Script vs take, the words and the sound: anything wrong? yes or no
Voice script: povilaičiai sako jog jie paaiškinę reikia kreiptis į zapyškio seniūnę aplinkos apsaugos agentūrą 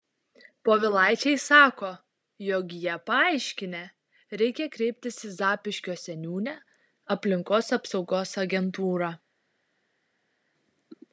no